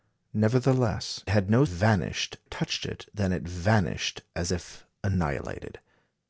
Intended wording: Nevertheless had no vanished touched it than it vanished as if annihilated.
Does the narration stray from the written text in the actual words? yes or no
no